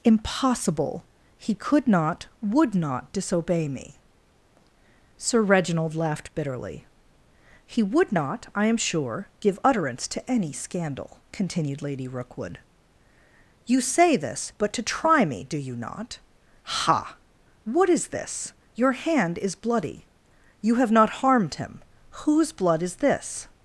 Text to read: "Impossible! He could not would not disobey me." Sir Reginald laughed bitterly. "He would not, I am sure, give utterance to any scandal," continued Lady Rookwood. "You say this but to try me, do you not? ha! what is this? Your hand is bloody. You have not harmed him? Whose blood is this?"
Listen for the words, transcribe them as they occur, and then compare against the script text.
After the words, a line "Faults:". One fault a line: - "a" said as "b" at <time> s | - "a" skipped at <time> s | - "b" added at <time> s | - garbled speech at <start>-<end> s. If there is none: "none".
"Impossible! He could not would not disobey me." Sir Reginald laughed bitterly. "He would not, I am sure, give utterance to any scandal," continued Lady Rookwood. "You say this but to try me, do you not? ha! what is this? Your hand is bloody. You have not harmed him? Whose blood is this?"
Faults:
none